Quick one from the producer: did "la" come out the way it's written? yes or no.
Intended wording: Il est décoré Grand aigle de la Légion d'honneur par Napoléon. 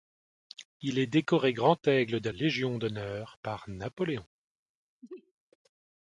no